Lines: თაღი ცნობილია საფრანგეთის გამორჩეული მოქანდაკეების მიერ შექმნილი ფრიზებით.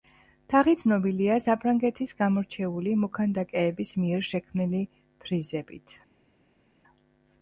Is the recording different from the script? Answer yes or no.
no